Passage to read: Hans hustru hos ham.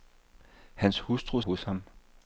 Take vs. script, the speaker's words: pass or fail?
pass